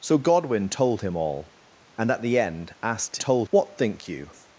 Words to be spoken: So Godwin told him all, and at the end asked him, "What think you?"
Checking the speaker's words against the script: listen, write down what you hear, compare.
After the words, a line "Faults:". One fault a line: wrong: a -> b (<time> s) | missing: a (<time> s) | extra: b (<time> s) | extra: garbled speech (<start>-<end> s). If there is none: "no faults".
So Godwin told him all, and at the end asked told, "What think you?"
Faults:
wrong: him -> told (3.2 s)